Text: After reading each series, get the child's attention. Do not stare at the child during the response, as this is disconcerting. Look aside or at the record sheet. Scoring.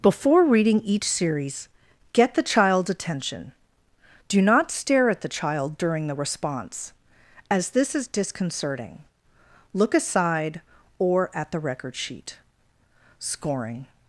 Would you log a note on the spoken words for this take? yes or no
yes